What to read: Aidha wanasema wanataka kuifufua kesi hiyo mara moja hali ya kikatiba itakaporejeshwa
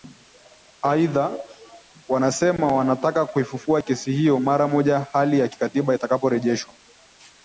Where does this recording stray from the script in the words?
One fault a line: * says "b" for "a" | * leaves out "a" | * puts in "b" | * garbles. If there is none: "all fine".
all fine